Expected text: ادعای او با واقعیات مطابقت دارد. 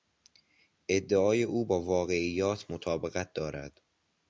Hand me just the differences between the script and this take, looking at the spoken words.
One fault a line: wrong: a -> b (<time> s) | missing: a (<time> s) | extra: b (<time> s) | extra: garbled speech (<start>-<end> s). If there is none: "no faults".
no faults